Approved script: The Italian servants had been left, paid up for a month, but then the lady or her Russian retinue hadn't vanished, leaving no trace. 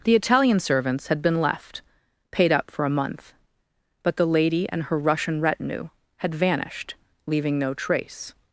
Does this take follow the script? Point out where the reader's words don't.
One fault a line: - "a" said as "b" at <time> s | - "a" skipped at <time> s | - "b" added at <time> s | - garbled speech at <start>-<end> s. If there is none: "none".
- "then" skipped at 4.1 s
- "or" said as "and" at 4.7 s
- "hadn't" said as "had" at 6.2 s